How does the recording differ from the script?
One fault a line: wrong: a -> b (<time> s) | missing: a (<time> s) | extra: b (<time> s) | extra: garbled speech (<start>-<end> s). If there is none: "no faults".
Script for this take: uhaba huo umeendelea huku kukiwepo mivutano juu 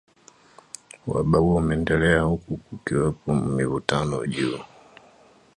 no faults